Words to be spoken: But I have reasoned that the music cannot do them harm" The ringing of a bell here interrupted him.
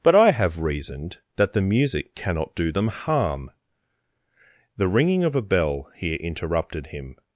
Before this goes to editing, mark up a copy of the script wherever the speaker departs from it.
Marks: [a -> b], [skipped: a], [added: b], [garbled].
But I have reasoned that the music cannot do them harm" The ringing of a bell here interrupted him.